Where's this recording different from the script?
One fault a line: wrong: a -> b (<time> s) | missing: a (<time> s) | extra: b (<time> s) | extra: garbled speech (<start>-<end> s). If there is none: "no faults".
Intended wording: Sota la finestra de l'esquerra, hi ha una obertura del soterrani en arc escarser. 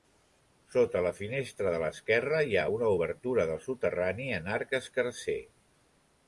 no faults